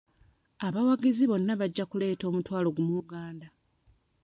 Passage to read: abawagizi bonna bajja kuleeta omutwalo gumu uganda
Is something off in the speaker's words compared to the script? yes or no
no